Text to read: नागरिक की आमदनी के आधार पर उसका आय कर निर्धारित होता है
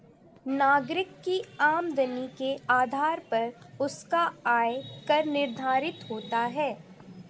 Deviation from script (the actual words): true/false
false